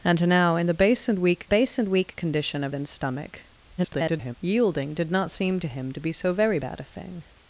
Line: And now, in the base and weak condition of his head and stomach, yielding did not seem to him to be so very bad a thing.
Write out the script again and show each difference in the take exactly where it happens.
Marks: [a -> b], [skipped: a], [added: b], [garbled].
And now, in the base and weak [added: base and weak] condition of [skipped: his head] and stomach, [garbled] yielding did not seem to him to be so very bad a thing.